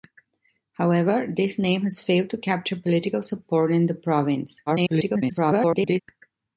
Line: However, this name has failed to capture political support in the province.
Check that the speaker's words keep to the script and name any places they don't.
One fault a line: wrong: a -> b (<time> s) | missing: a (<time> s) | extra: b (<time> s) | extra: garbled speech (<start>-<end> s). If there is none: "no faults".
extra: garbled speech (4.7-6.0 s)